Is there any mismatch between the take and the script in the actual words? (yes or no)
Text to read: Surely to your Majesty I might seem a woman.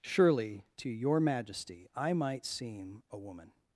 no